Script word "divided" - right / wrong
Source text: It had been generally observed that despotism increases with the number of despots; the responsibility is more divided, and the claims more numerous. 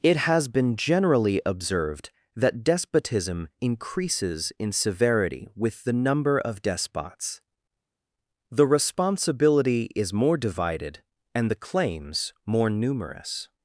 right